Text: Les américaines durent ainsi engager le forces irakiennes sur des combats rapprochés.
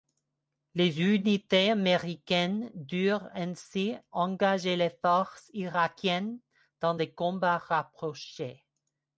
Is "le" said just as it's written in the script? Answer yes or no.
no